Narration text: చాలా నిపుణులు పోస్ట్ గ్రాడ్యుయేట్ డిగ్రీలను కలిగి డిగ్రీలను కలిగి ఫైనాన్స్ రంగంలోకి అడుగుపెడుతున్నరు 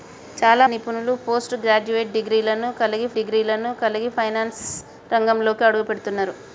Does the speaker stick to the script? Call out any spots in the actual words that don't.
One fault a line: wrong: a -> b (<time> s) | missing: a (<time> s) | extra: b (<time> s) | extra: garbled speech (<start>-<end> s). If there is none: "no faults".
no faults